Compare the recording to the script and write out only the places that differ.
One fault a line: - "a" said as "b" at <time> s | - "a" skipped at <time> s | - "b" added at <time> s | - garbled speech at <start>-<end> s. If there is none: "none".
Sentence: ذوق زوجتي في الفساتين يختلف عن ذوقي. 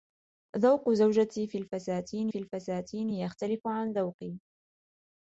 - "في الفساتين" added at 2.3 s